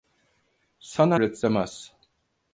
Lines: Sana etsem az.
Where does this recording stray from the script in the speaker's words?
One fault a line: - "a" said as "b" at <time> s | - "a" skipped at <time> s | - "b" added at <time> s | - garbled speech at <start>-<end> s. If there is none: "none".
none